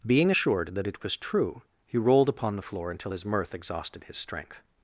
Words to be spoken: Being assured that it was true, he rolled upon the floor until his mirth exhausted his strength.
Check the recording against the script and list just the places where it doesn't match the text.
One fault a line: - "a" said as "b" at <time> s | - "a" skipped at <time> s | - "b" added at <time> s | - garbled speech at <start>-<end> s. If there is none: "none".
none